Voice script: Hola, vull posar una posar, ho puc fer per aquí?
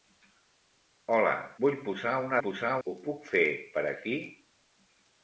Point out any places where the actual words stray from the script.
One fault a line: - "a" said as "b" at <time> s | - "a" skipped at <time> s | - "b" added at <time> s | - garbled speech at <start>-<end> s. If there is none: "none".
none